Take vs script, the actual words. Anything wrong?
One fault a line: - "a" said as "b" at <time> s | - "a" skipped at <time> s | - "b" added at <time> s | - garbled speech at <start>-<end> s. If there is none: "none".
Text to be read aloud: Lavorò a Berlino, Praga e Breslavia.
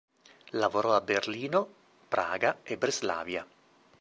none